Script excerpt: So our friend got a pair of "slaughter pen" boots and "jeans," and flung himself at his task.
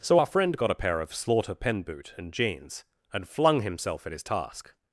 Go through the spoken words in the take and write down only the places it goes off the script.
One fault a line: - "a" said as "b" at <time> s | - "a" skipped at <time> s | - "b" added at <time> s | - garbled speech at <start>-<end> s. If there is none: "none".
- "boots" said as "boot" at 1.8 s